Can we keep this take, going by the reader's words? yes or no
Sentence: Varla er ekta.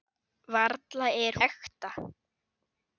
yes